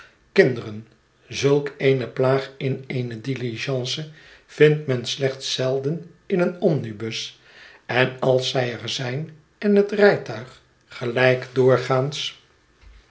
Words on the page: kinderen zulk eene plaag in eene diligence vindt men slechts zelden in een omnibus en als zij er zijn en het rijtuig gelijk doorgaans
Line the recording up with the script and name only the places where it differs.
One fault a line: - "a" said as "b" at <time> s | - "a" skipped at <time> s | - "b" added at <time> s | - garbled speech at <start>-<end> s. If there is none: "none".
none